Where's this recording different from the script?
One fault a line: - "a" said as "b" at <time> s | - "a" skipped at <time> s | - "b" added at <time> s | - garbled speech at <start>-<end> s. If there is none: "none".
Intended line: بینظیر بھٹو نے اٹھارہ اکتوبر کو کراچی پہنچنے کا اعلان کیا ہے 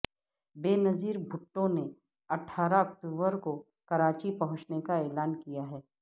none